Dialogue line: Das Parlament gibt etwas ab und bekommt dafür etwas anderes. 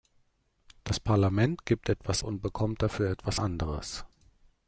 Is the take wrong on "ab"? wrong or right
wrong